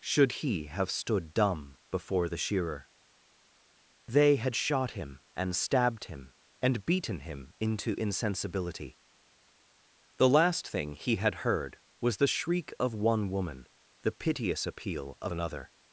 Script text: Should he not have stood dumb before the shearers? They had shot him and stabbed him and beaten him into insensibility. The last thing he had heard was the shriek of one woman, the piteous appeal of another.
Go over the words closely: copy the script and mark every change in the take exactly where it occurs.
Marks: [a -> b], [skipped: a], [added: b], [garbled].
Should he [skipped: not] have stood dumb before the [shearers? -> shearer] They had shot him and stabbed him and beaten him into insensibility. The last thing he had heard was the shriek of one woman, the piteous appeal of another.